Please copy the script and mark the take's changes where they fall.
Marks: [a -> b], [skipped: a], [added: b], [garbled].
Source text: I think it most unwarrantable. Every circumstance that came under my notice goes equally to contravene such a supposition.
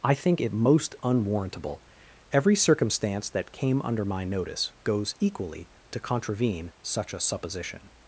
I think it most unwarrantable. Every circumstance that came under my notice goes equally to contravene such a supposition.